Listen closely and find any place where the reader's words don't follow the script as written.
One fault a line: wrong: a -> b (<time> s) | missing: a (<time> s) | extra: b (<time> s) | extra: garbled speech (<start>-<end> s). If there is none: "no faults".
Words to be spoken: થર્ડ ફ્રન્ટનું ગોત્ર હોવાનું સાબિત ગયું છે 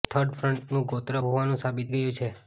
no faults